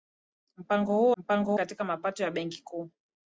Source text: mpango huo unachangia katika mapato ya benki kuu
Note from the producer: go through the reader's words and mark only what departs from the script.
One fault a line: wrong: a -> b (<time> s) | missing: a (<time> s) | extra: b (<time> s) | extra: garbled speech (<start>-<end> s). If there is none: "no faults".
wrong: unachangia -> mpango (1.2 s)